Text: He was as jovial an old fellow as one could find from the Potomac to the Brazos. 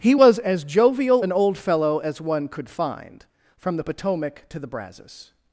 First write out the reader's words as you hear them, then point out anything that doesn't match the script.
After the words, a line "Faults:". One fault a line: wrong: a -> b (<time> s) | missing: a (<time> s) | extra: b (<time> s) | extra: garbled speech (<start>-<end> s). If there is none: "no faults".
He was as jovial an old fellow as one could find from the Potomac to the Brazos.
Faults:
no faults